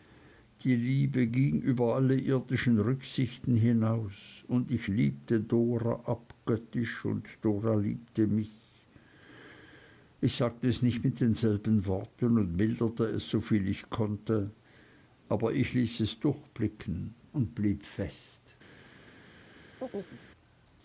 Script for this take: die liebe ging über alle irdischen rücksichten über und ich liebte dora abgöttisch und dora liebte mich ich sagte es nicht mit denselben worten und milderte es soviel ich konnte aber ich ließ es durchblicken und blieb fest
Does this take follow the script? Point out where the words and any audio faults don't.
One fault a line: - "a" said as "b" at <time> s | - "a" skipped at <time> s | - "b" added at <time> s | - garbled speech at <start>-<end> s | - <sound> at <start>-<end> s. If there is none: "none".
- "über" said as "hinaus" at 3.5 s
- chirp at 19.8-20.2 s